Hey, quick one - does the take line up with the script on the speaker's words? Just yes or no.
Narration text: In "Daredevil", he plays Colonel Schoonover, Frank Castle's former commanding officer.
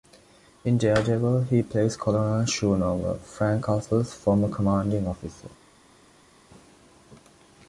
yes